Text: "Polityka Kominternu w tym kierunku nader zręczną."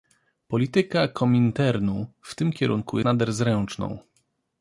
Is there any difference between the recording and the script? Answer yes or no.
no